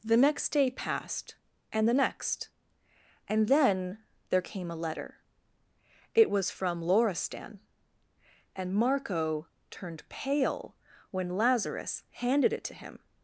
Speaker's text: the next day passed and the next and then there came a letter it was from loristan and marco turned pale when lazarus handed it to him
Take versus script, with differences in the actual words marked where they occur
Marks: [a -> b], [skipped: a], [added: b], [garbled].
the next day passed and the next and then there came a letter it was from loristan and marco turned pale when lazarus handed it to him